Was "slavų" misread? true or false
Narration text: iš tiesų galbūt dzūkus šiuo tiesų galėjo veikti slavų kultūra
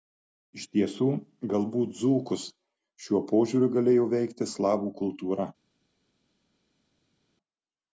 false